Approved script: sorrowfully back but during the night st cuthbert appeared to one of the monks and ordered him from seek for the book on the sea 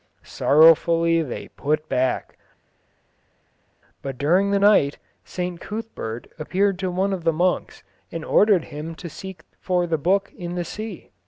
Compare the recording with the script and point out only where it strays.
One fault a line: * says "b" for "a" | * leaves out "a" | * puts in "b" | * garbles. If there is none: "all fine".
* puts in "they put"
* says "to" for "from"
* says "in" for "on"